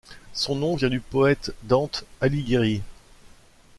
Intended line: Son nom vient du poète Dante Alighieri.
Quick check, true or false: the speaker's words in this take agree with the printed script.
true